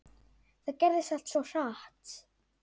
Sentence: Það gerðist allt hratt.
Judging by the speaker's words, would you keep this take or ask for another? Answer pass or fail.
fail